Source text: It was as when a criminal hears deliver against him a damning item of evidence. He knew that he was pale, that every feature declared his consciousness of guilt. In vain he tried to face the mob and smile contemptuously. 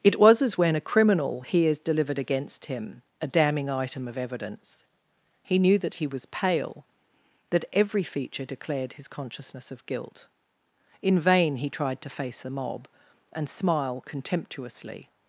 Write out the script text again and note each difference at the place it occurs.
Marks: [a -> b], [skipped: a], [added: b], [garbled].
It was as when a criminal hears [deliver -> delivered] against him a damning item of evidence. He knew that he was pale, that every feature declared his consciousness of guilt. In vain he tried to face the mob and smile contemptuously.